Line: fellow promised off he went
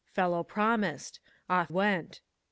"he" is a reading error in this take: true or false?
true